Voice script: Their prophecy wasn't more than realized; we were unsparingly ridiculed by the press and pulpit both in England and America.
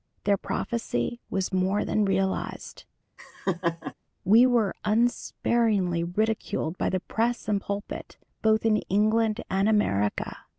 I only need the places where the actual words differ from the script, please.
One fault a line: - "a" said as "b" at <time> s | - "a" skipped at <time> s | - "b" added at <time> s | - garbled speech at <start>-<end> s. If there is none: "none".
- "wasn't" said as "was" at 1.3 s